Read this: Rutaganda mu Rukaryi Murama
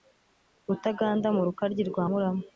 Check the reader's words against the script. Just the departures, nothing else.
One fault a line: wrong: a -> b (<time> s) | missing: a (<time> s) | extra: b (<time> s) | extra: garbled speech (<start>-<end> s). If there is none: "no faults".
extra: rwa (1.9 s)